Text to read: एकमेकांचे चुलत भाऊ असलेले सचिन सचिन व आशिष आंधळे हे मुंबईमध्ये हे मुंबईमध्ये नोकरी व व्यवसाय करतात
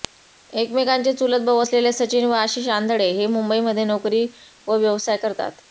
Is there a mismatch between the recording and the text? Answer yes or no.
yes